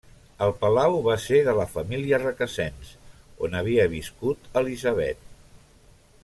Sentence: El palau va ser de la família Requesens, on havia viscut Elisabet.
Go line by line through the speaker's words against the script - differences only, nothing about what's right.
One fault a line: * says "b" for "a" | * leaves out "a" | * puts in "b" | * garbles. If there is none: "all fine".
all fine